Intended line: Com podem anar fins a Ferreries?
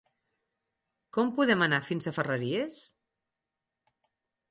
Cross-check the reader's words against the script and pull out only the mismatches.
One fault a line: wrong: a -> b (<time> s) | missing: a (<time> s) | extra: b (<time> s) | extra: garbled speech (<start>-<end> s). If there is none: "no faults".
no faults